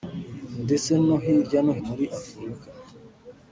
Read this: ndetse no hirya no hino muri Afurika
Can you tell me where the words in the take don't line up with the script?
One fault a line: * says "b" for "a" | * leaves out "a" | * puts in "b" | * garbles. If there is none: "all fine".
* leaves out "hino"